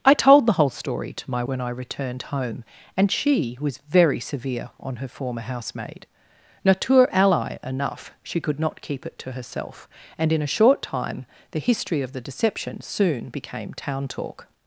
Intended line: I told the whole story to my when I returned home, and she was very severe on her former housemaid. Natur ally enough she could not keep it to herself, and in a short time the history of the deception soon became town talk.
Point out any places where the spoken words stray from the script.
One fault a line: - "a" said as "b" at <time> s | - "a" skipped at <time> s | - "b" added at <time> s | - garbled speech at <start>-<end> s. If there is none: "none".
none